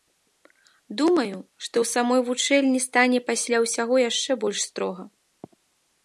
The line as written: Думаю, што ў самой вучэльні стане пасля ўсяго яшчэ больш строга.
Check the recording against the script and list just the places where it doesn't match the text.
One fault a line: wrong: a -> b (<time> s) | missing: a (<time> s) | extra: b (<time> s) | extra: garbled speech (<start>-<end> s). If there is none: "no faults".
no faults